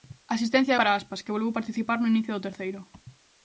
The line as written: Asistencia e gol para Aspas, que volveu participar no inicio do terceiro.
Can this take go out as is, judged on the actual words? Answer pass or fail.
fail